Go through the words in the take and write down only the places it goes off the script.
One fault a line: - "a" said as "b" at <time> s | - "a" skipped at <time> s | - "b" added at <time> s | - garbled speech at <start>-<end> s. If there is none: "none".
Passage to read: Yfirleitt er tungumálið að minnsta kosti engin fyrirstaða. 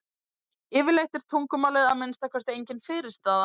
none